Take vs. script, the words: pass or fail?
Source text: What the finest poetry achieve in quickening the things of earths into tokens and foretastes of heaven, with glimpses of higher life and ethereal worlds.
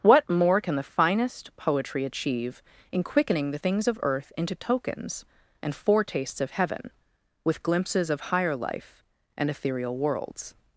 fail